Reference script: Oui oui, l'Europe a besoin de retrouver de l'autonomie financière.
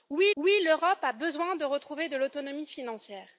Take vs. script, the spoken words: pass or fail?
pass